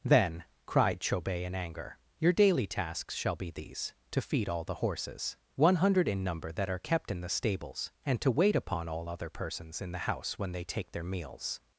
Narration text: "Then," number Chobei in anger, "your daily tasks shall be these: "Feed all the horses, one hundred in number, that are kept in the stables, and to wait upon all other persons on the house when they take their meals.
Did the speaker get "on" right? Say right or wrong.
wrong